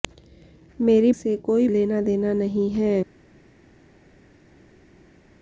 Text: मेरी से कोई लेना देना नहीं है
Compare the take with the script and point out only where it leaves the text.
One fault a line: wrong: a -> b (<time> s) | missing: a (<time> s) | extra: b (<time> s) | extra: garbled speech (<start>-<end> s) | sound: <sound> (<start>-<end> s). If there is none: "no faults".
no faults